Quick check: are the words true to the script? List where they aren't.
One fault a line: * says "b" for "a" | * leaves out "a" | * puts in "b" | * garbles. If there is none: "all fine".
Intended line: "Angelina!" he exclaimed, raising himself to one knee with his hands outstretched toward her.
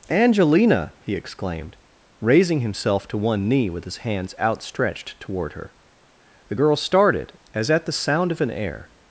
* puts in "The girl started as at the sound of an air"